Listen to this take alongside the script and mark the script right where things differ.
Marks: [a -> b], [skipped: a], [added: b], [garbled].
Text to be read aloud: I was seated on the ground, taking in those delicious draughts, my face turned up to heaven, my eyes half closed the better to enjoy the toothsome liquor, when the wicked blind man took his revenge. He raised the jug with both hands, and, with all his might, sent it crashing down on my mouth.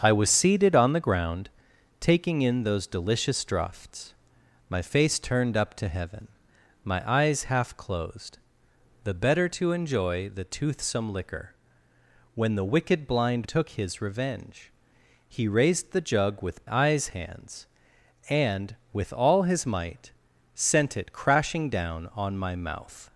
I was seated on the ground, taking in those delicious draughts, my face turned up to heaven, my eyes half closed the better to enjoy the toothsome liquor, when the wicked blind [skipped: man] took his revenge. He raised the jug with [both -> eyes] hands, and, with all his might, sent it crashing down on my mouth.